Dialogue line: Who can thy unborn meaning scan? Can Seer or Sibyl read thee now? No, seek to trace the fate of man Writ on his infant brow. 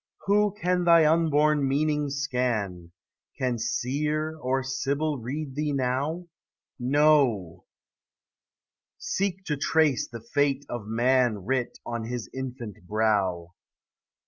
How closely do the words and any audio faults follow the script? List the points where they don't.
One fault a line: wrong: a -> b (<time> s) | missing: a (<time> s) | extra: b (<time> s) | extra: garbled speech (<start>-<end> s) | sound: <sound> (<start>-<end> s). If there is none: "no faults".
no faults